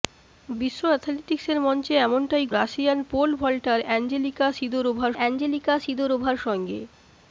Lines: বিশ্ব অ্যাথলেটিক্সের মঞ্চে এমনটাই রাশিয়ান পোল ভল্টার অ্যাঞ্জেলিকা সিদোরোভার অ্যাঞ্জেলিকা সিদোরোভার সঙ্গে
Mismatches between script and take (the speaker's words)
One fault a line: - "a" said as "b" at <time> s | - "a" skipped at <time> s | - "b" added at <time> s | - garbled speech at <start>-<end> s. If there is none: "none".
none